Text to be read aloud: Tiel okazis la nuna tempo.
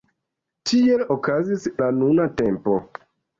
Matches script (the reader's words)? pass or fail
pass